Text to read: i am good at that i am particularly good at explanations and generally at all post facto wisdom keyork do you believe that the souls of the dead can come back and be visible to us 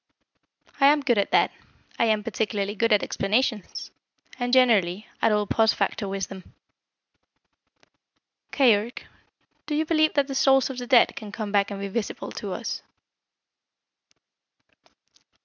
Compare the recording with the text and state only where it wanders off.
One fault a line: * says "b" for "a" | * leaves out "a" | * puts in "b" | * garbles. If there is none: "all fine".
all fine